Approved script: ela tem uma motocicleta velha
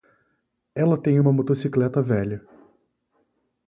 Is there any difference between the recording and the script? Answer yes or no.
no